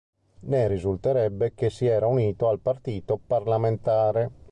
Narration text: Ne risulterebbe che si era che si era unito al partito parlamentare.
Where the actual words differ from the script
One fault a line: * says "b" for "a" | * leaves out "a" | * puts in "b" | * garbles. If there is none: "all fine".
* leaves out "che si era"